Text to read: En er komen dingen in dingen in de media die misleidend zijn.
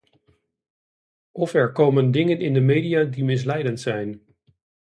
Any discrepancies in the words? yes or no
yes